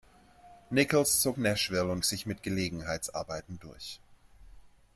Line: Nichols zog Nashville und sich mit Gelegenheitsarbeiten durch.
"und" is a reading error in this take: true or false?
false